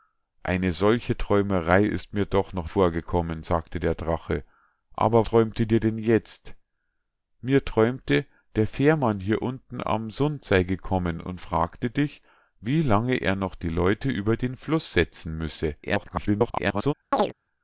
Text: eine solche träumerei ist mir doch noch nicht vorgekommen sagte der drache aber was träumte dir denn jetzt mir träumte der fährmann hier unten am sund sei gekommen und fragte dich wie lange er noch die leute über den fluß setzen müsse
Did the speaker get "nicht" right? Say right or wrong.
wrong